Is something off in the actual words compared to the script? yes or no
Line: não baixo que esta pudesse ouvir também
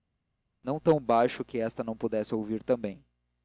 yes